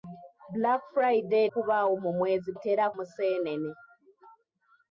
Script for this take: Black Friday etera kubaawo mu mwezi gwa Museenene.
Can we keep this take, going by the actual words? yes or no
no